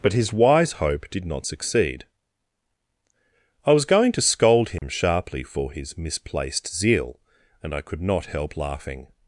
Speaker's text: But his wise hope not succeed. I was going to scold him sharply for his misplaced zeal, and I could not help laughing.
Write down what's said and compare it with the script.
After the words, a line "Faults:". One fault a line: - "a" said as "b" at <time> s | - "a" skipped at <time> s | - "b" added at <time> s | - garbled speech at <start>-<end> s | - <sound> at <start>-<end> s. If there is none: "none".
But his wise hope did not succeed. I was going to scold him sharply for his misplaced zeal, and I could not help laughing.
Faults:
- "did" added at 1.1 s
- dropout at 4.8-4.8 s